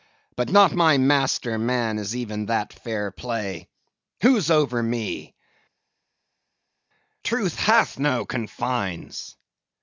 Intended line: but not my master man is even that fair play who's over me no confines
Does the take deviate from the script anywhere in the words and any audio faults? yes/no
yes